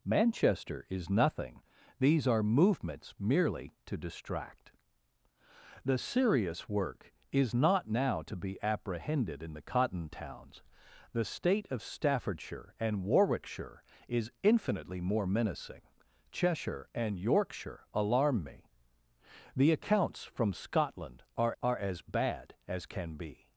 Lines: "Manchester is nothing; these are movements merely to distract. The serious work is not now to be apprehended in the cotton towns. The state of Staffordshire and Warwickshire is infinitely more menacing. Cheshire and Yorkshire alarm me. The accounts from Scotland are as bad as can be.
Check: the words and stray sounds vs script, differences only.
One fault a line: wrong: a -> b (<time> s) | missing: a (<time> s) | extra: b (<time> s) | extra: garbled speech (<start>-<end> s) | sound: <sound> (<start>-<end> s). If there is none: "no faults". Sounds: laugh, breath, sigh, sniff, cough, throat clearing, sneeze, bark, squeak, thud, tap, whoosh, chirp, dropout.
extra: are (21.6 s)